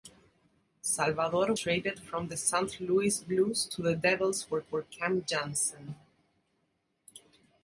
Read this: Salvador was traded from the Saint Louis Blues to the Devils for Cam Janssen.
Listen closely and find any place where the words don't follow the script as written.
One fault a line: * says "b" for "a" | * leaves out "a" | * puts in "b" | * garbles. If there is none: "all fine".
* leaves out "was"
* puts in "for"